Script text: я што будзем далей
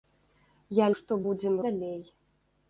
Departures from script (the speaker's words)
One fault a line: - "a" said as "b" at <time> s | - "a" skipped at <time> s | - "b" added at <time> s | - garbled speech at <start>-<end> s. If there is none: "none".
none